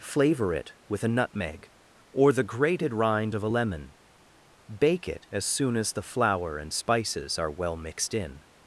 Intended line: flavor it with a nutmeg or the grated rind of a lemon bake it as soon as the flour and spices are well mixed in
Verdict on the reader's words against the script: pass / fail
pass